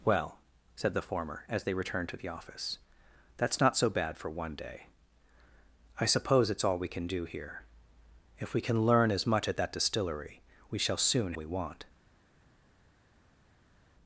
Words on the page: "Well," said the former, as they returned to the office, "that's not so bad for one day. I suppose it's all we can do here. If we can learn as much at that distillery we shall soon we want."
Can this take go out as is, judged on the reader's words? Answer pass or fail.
pass